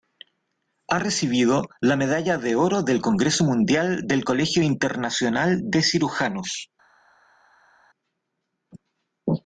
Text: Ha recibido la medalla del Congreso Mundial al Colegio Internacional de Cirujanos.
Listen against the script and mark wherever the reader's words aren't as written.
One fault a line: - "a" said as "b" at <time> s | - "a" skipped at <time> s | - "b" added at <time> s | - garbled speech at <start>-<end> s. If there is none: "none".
- "de oro" added at 2.4 s
- "al" said as "del" at 4.1 s